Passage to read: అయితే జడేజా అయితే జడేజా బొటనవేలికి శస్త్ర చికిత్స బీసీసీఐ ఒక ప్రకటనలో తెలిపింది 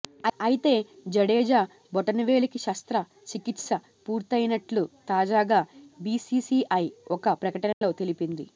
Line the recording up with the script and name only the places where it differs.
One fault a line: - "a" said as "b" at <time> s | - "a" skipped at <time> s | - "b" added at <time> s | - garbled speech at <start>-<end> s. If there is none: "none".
- "అయితే జడేజా" skipped at 1.6 s
- "పూర్తయినట్లు తాజాగా" added at 4.1 s